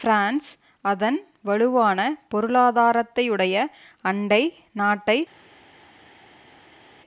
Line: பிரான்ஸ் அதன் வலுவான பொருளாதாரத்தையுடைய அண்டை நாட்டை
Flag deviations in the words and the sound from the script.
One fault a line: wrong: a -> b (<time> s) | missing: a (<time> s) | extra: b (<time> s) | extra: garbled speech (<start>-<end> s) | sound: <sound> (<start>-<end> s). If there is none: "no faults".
no faults